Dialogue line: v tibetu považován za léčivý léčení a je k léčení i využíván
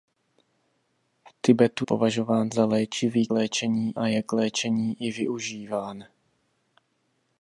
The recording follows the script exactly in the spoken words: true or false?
true